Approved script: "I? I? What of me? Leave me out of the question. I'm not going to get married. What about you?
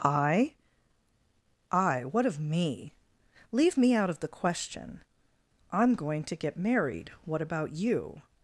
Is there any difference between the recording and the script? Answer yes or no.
yes